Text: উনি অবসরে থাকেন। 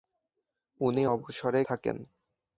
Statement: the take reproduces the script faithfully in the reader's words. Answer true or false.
true